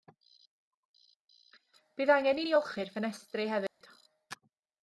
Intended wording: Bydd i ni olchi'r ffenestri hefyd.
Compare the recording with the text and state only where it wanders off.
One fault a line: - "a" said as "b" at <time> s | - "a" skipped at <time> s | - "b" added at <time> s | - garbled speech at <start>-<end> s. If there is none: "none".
- "angen" added at 2.1 s